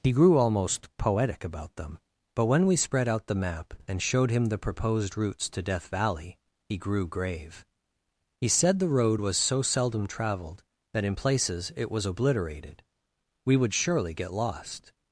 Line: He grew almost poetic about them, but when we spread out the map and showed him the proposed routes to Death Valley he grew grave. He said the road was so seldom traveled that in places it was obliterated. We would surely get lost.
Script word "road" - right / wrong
right